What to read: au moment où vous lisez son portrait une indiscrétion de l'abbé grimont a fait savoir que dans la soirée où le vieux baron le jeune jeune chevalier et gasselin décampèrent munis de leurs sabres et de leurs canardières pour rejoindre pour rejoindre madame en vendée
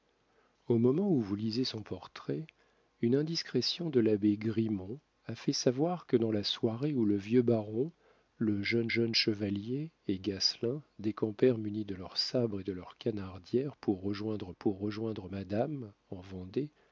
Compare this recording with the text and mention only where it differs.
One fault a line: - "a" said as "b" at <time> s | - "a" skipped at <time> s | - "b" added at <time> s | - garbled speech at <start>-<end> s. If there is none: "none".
none